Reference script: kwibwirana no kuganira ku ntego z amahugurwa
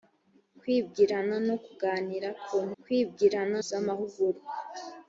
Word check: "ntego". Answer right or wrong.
wrong